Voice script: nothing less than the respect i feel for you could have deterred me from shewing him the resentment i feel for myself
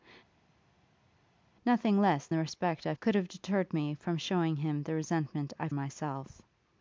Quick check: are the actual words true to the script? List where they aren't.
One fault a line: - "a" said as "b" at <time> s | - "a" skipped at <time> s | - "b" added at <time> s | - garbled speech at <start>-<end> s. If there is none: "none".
- "than" skipped at 2.3 s
- "feel for you" skipped at 2.9 s
- "feel for" skipped at 5.7 s